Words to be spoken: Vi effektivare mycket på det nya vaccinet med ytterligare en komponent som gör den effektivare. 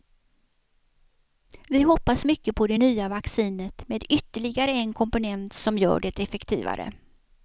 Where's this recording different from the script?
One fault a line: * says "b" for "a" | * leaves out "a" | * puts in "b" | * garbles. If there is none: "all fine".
* says "hoppas" for "effektivare"
* says "det" for "den"